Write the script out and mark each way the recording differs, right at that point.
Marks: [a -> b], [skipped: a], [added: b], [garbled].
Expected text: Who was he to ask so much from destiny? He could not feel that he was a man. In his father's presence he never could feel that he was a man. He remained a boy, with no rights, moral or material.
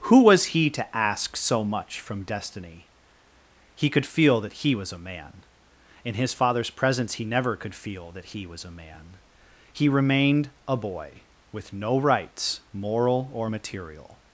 Who was he to ask so much from destiny? He could [skipped: not] feel that he was a man. In his father's presence he never could feel that he was a man. He remained a boy, with no rights, moral or material.